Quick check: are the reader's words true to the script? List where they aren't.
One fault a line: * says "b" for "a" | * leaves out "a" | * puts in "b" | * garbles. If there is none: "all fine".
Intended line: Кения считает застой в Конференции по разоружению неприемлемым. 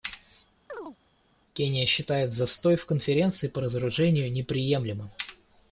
all fine